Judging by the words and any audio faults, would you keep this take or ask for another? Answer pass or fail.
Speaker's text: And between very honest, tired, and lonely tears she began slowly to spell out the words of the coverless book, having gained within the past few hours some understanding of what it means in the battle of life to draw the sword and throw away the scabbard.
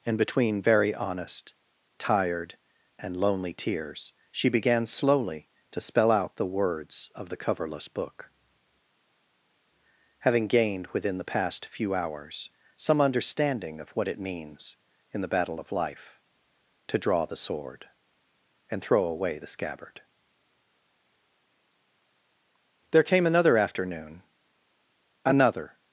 fail